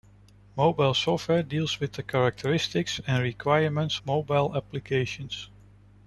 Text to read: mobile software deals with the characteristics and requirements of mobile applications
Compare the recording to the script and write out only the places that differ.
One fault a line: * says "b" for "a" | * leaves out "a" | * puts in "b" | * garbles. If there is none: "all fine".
* leaves out "of"